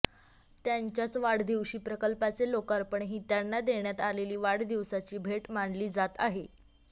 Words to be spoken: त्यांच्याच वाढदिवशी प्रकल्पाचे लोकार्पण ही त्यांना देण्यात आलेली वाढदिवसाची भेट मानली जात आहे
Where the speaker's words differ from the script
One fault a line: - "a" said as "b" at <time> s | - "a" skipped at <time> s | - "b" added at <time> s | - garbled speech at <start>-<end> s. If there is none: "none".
none